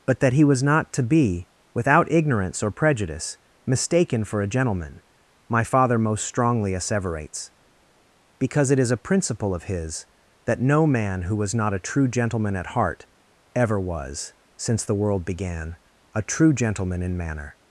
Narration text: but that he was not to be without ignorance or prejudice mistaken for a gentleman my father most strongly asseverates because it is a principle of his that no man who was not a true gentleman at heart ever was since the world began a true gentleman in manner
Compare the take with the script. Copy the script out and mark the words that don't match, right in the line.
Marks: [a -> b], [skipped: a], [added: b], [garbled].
but that he was not to be without ignorance or prejudice mistaken for a gentleman my father most strongly asseverates because it is a principle of his that no man who was not a true gentleman at heart ever was since the world began a true gentleman in manner